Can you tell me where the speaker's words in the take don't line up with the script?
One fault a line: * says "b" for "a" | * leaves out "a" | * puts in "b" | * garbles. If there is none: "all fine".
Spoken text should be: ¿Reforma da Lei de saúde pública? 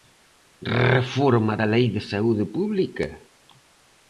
all fine